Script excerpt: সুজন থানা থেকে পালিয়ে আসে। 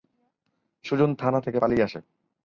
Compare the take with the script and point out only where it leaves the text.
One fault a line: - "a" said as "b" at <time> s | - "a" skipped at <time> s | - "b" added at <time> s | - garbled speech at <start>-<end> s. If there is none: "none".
none